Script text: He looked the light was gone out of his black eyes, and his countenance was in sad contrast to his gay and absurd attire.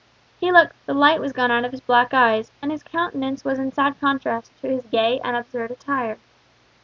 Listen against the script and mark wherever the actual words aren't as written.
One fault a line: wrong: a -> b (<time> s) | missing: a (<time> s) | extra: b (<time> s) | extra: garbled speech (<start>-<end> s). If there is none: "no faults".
no faults